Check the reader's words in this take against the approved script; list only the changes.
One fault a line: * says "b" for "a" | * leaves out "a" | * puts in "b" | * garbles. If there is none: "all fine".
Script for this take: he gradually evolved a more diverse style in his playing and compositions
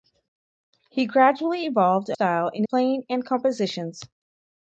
* leaves out "more diverse"
* leaves out "his"